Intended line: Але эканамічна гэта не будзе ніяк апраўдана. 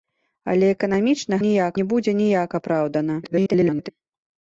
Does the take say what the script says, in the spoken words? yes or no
no